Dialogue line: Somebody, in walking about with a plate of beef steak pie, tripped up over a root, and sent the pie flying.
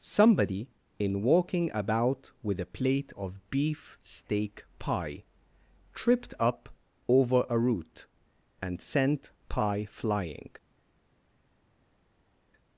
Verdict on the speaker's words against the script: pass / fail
fail